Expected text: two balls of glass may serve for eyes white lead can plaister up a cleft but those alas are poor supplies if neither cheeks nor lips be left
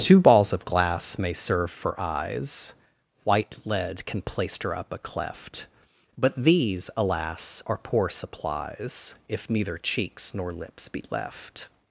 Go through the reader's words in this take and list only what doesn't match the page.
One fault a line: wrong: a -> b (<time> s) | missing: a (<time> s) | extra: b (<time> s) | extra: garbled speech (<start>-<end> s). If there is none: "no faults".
wrong: those -> these (6.3 s)